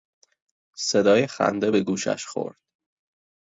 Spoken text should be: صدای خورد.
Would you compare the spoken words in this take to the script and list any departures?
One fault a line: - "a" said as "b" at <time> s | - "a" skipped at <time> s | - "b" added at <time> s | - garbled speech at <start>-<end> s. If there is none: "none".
- "خنده به گوشش" added at 1.3 s